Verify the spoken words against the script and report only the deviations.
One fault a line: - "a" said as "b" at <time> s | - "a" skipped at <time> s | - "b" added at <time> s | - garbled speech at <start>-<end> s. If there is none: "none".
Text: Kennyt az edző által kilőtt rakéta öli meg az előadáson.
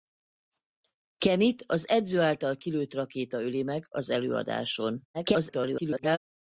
- garbled speech at 5.1-6.2 s